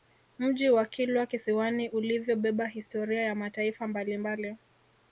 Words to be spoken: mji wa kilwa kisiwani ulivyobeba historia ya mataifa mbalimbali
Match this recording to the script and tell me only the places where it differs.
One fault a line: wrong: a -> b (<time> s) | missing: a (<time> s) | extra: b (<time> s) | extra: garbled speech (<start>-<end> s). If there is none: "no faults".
no faults